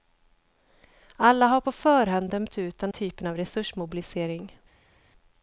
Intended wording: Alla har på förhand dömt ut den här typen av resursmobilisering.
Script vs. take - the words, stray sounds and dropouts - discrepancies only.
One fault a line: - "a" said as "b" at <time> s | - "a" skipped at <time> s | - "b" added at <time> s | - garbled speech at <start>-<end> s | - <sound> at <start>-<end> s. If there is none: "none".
- "här" skipped at 2.9 s